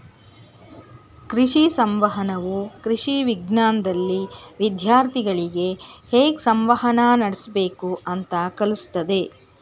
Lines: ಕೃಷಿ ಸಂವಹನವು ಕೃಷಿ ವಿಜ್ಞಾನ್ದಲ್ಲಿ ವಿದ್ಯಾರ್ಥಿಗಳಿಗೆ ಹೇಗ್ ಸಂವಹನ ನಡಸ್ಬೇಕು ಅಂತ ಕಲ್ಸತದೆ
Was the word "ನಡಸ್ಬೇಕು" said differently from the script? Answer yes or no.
no